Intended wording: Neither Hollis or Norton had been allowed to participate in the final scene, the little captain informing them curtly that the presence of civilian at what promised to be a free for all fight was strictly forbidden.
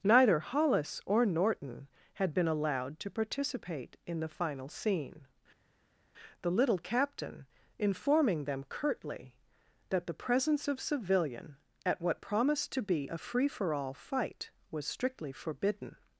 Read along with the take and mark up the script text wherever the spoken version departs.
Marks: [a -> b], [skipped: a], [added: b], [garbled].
Neither Hollis or Norton had been allowed to participate in the final scene, the little captain informing them curtly that the presence of civilian at what promised to be a free for all fight was strictly forbidden.